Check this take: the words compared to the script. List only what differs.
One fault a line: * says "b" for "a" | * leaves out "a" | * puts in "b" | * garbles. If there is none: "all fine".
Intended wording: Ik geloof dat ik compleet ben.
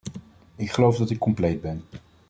all fine